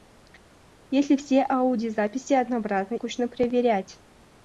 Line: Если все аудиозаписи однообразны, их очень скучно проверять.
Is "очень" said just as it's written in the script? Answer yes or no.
no